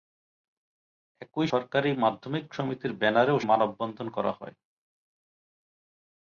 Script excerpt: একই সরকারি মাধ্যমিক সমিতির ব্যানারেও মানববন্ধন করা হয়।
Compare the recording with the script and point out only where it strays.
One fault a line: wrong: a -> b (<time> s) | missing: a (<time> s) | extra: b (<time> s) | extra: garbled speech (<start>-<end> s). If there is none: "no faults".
no faults